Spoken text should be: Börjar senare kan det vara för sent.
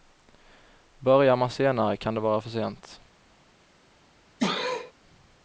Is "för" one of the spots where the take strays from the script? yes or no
no